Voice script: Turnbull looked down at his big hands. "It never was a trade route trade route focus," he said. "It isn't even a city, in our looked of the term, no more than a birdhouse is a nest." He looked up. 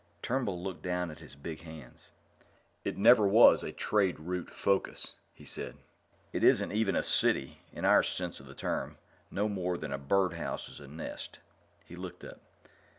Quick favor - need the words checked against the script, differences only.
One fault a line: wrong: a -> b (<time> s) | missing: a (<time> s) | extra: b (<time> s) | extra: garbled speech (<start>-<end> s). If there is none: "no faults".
missing: trade route (4.5 s)
wrong: looked -> sense (8.0 s)